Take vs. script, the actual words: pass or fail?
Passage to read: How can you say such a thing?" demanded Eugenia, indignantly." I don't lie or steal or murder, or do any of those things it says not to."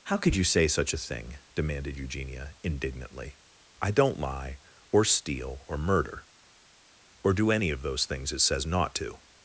fail